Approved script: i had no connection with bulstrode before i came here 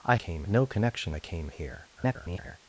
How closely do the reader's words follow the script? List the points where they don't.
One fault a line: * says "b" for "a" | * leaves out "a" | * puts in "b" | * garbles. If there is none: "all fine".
* says "came" for "had"
* leaves out "with bulstrode before"
* garbles